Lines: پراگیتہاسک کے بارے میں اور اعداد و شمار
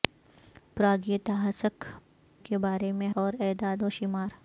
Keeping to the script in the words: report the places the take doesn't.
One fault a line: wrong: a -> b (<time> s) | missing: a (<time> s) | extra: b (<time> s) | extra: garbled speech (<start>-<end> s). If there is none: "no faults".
no faults